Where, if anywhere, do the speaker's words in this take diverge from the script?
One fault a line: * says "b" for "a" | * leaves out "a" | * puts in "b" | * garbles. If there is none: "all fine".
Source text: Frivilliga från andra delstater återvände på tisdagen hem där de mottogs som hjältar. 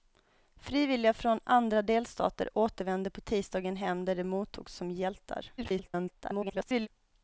* garbles